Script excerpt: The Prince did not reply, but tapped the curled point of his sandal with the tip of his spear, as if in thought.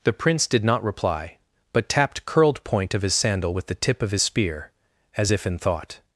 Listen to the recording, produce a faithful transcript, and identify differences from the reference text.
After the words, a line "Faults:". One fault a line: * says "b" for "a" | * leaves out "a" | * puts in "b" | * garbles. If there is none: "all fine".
The Prince did not reply, but tapped curled point of his sandal with the tip of his spear, as if in thought.
Faults:
* leaves out "the"